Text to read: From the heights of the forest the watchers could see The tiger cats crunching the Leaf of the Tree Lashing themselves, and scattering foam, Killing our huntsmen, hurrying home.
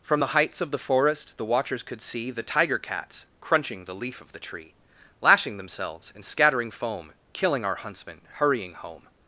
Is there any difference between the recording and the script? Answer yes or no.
no